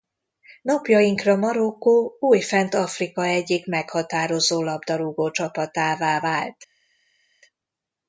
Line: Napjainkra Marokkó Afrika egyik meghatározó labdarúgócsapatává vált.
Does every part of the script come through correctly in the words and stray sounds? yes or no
no